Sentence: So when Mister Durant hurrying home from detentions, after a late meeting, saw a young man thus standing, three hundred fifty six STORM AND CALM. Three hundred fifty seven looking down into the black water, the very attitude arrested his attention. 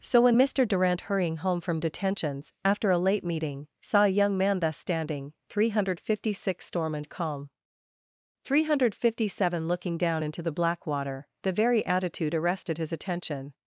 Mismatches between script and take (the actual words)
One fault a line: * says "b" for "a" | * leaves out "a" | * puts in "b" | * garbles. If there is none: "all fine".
all fine